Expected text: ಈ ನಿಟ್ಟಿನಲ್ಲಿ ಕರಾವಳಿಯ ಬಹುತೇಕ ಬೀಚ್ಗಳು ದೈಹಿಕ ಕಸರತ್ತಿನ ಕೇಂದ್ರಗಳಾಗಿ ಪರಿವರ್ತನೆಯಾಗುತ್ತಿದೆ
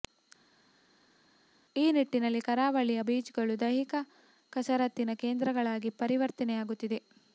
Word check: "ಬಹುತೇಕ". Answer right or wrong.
wrong